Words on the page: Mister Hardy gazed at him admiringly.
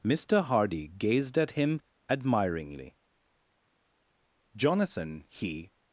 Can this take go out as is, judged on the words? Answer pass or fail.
fail